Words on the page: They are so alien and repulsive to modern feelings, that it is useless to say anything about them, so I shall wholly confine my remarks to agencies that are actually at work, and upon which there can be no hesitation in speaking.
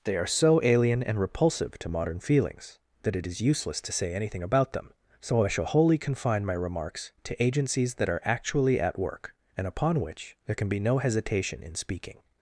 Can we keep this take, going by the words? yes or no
yes